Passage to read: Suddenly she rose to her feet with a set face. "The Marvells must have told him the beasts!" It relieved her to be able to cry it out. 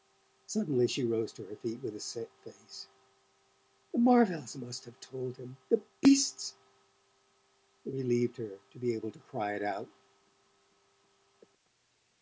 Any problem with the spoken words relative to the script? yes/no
no